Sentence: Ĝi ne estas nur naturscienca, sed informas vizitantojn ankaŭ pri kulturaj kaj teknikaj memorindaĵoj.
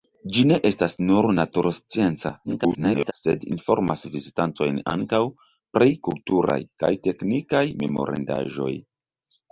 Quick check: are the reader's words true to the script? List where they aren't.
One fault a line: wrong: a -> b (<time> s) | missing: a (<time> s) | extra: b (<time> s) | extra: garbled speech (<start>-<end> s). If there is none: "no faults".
extra: garbled speech (2.4-3.1 s)